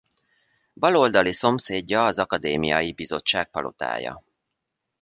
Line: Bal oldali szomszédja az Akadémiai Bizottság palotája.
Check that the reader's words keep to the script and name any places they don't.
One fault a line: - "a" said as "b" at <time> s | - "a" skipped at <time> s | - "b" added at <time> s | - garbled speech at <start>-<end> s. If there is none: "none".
none